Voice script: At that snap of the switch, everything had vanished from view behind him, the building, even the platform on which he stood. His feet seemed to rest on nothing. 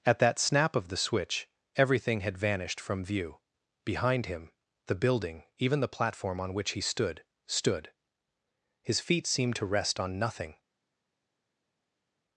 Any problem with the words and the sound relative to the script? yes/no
yes